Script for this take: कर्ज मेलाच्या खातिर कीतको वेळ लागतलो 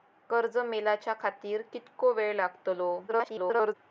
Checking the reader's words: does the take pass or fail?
fail